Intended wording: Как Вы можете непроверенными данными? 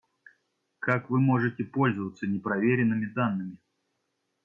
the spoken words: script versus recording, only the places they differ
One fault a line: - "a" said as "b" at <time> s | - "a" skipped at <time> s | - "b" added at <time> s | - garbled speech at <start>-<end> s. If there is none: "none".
- "пользоваться" added at 1.6 s